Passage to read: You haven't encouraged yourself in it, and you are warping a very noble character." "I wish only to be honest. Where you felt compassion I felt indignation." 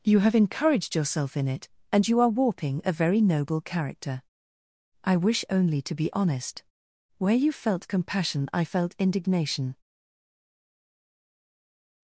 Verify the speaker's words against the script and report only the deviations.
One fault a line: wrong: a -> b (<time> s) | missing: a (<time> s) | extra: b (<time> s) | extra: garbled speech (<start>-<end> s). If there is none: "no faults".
wrong: haven't -> have (0.2 s)